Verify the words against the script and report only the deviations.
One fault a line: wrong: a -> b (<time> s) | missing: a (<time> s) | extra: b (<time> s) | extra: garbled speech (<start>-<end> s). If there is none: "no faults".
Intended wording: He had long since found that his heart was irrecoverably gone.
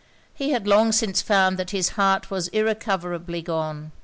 no faults